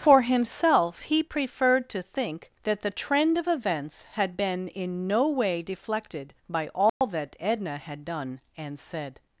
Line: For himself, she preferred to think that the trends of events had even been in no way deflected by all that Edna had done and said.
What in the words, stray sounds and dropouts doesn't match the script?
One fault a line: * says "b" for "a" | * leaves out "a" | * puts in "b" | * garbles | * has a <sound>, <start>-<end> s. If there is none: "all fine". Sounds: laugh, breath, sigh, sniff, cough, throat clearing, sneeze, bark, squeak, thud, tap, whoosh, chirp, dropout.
* says "he" for "she"
* says "trend" for "trends"
* leaves out "even"
* has a dropout, 6.9-7.0 s